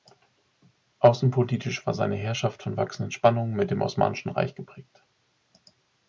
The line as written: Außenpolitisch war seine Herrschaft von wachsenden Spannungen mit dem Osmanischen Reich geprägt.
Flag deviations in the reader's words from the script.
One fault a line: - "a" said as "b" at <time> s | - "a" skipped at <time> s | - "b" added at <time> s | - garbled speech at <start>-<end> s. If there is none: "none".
none